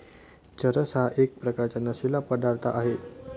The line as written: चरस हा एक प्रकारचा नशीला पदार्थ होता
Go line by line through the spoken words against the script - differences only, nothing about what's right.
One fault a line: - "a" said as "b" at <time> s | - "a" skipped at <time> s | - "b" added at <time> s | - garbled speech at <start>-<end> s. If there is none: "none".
- "होता" said as "आहे" at 2.7 s